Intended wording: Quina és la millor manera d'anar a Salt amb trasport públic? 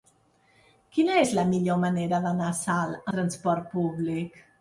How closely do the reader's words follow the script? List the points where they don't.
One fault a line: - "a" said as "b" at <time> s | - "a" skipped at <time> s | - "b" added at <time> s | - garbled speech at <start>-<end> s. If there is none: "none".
- "amb" skipped at 3.1 s